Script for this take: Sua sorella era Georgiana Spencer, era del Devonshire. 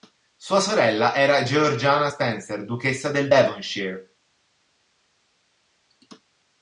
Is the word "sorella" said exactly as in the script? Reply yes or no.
yes